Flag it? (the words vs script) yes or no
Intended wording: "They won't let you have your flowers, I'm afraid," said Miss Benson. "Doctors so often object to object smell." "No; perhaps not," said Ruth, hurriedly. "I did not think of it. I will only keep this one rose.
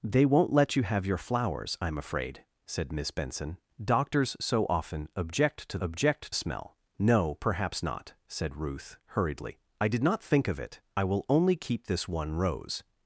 no